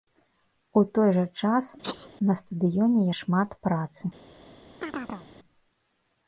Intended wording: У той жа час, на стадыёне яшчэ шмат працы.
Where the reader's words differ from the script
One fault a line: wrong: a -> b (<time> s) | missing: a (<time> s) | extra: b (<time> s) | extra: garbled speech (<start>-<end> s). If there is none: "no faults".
missing: яшчэ (3.0 s)